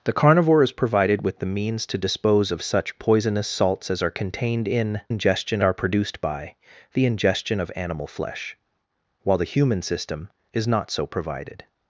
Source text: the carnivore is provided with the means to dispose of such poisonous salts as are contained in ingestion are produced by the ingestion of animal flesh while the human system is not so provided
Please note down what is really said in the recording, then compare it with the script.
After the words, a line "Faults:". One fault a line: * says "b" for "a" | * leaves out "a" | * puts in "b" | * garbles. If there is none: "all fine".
the carnivore is provided with the means to dispose of such poisonous salts as are contained in ingestion are produced by the ingestion of animal flesh while the human system is not so provided
Faults:
all fine